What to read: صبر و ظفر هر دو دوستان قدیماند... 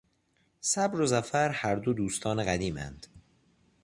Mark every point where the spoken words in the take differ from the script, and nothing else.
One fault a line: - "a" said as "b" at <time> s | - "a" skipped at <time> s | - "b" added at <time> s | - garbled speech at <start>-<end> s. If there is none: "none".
none